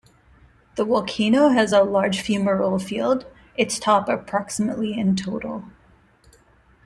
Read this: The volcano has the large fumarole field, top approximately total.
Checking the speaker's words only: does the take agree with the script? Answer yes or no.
no